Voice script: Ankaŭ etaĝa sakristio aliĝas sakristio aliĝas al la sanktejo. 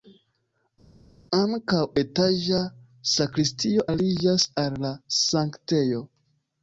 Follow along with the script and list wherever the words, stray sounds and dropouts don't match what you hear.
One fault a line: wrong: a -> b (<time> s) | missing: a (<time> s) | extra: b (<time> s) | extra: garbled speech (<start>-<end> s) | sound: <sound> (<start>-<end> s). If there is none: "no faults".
missing: sakristio aliĝas (4.5 s)